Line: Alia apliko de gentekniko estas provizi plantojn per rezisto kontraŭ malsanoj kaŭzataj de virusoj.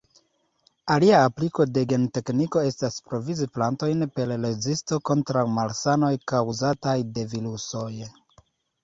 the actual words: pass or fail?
pass